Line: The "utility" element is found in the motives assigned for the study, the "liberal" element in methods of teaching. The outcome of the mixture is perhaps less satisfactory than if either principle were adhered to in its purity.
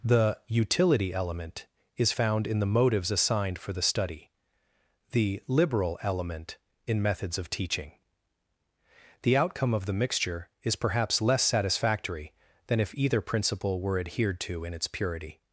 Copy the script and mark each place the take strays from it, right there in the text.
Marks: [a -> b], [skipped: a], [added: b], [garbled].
The "utility" element is found in the motives assigned for the study, the "liberal" element in methods of teaching. The outcome of the mixture is perhaps less satisfactory than if either principle were adhered to in its purity.